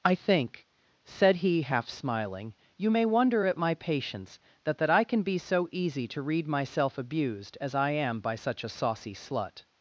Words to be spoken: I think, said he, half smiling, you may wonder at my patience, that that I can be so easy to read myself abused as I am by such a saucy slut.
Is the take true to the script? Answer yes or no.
yes